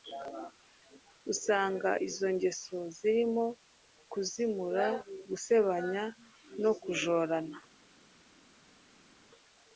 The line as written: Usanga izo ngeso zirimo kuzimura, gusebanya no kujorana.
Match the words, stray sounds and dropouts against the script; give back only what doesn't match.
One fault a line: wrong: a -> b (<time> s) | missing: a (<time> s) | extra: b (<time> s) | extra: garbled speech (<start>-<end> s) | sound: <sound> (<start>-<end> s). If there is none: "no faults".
no faults